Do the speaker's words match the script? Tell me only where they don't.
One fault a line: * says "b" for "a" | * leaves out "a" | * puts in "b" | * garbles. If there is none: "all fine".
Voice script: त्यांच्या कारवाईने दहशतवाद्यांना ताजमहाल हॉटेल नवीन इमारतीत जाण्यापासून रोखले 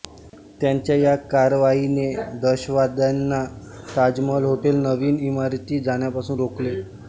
* puts in "या"